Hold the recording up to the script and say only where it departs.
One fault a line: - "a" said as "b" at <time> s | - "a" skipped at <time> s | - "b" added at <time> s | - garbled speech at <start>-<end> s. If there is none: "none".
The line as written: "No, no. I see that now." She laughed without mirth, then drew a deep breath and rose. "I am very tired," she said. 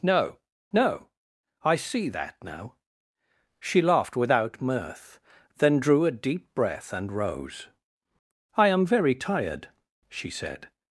none